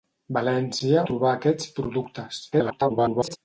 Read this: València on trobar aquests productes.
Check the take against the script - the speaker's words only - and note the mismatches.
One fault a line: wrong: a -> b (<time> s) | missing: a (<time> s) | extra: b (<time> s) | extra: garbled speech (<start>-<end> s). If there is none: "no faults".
missing: on (1.0 s)
extra: garbled speech (2.5-3.4 s)